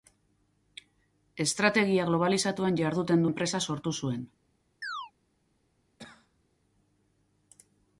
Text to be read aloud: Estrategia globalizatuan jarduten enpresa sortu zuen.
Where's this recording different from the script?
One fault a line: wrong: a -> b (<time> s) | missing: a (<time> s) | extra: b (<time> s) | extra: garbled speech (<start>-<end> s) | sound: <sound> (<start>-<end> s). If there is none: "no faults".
sound: chirp (4.8-5.1 s)
sound: cough (6.0-6.4 s)